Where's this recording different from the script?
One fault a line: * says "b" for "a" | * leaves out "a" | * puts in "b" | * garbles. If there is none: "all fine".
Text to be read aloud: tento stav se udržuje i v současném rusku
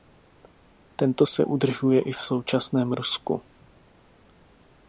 * leaves out "stav"